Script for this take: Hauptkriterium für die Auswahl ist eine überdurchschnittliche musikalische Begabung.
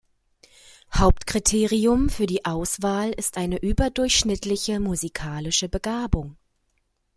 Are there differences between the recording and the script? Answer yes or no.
no